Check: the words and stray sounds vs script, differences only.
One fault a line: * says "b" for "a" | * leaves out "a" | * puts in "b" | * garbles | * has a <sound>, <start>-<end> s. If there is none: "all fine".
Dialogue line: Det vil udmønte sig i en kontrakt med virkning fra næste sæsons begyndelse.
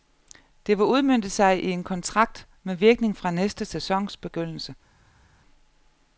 all fine